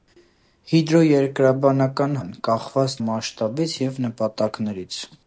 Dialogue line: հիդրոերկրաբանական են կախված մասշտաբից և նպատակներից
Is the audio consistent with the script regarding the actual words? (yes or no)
yes